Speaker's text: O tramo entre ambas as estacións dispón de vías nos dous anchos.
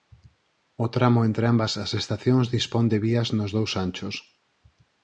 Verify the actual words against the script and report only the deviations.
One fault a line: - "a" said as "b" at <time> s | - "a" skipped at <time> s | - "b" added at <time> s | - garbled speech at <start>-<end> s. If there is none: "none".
none